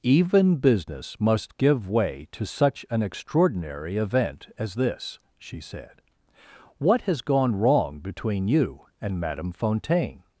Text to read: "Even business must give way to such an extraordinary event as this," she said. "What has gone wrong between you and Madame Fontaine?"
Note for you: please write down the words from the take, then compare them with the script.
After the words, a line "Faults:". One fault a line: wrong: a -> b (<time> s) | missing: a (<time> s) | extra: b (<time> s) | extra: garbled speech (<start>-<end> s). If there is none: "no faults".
"Even business must give way to such an extraordinary event as this," she said. "What has gone wrong between you and Madame Fontaine?"
Faults:
no faults